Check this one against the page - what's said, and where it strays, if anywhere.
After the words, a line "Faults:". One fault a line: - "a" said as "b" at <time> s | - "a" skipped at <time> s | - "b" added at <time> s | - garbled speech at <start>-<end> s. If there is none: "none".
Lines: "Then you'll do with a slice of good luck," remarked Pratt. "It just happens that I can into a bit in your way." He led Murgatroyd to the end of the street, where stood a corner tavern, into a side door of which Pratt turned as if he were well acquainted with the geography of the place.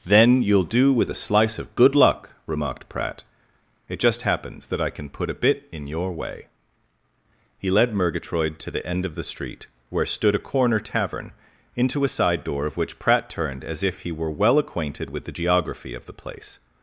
"Then you'll do with a slice of good luck," remarked Pratt. "It just happens that I can put a bit in your way." He led Murgatroyd to the end of the street, where stood a corner tavern, into a side door of which Pratt turned as if he were well acquainted with the geography of the place.
Faults:
- "into" said as "put" at 5.1 s